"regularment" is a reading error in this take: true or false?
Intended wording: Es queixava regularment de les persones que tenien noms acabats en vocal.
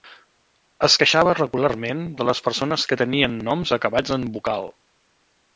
false